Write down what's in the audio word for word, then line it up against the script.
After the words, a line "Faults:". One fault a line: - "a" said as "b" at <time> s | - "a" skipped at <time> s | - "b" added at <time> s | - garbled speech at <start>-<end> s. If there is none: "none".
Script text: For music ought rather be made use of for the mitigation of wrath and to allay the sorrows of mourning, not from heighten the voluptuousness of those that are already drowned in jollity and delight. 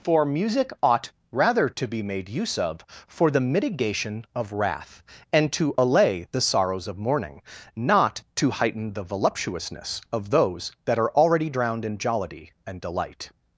For music ought rather to be made use of for the mitigation of wrath and to allay the sorrows of mourning, not to heighten the voluptuousness of those that are already drowned in jollity and delight.
Faults:
- "to" added at 1.7 s
- "from" said as "to" at 8.4 s